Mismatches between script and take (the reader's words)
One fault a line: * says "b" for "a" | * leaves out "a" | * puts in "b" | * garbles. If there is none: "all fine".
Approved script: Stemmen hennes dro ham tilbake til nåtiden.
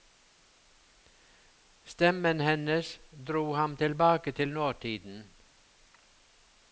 all fine